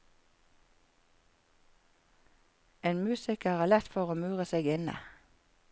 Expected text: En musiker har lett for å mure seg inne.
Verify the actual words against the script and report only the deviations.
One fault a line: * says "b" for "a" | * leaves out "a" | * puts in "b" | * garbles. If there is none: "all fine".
all fine